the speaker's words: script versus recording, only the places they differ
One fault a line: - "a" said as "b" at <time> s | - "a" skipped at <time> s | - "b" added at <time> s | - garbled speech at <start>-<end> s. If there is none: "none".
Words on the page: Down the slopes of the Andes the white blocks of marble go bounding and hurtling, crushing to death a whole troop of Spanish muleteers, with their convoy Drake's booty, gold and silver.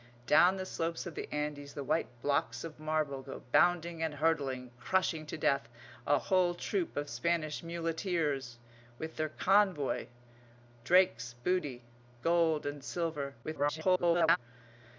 - garbled speech at 13.4-14.4 s